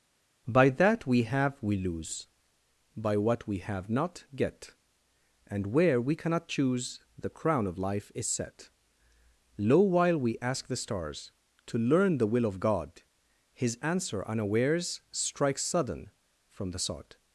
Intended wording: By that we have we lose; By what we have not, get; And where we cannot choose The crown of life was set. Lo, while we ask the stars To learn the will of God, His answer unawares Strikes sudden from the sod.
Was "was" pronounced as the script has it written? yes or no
no